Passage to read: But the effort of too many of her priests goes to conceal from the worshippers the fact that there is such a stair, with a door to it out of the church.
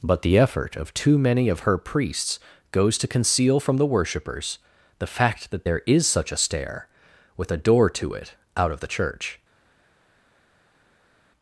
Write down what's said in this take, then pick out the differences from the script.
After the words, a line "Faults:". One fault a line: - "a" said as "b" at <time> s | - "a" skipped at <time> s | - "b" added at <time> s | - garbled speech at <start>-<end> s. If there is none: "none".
But the effort of too many of her priests goes to conceal from the worshippers the fact that there is such a stair, with a door to it out of the church.
Faults:
none